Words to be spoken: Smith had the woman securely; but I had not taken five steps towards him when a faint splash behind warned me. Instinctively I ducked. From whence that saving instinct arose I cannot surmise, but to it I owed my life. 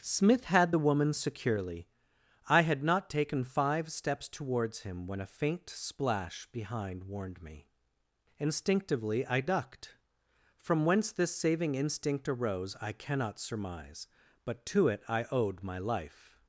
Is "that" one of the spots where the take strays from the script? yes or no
yes